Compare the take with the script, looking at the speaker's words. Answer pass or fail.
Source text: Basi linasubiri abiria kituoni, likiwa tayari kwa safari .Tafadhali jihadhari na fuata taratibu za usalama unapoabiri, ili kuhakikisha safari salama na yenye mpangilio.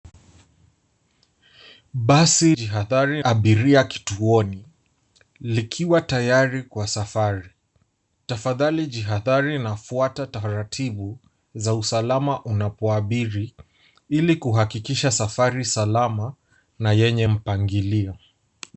fail